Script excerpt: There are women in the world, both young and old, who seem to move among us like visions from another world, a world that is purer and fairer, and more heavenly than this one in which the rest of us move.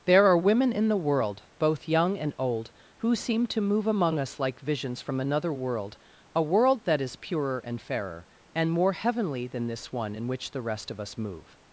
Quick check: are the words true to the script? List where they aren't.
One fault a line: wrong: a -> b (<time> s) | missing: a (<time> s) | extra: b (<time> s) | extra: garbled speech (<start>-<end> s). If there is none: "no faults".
no faults